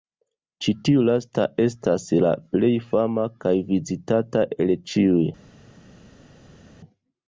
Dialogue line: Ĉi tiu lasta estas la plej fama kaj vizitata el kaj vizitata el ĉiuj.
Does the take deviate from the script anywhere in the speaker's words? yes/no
yes